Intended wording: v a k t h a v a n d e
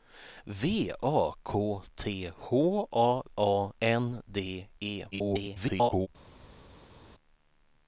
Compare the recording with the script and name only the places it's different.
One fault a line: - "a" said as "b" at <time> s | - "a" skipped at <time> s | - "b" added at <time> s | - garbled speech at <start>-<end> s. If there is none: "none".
- "v" skipped at 3.2 s
- garbled speech at 5.1-6.1 s